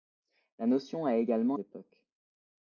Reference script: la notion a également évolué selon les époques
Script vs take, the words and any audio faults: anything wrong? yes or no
yes